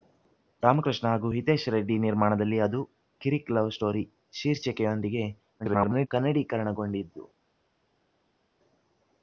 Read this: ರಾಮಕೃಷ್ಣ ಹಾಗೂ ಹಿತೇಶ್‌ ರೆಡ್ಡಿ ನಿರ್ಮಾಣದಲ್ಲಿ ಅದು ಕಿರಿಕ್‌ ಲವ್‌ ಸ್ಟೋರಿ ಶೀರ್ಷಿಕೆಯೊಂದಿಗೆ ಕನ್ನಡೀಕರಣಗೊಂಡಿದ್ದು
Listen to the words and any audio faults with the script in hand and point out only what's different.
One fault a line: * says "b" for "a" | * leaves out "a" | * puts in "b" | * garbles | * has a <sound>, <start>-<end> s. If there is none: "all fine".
* garbles